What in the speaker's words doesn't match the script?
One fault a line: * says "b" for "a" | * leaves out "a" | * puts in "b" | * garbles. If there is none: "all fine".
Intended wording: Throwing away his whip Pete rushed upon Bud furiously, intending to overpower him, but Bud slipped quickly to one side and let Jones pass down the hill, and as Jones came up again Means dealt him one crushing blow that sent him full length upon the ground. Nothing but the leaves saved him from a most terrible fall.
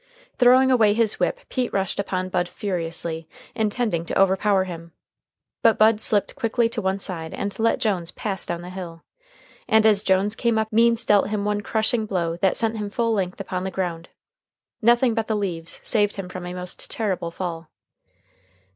* leaves out "again"